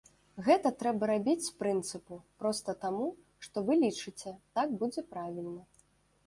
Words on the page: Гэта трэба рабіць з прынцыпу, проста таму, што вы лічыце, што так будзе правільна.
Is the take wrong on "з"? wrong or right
right